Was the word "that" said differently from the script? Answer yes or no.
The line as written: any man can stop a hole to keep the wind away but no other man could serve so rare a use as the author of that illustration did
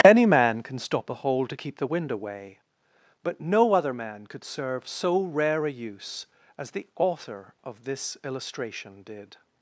yes